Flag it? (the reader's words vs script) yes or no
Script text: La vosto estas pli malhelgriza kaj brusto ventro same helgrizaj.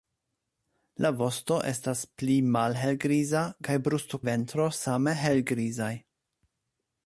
no